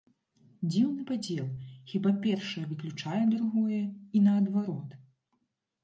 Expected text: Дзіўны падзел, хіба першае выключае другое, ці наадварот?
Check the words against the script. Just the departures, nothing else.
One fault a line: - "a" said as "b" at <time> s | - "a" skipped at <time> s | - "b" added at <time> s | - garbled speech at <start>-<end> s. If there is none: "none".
- "ці" said as "і" at 4.1 s